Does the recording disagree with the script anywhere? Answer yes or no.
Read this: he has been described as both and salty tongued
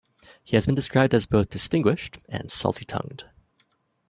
yes